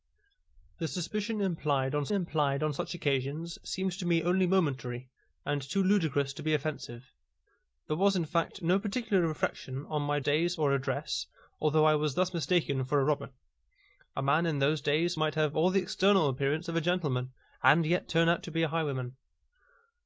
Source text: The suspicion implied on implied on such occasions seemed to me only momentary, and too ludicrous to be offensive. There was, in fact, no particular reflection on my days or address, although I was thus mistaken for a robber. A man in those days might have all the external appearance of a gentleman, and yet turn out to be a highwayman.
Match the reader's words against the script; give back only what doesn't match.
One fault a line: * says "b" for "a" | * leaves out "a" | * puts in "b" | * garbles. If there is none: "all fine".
all fine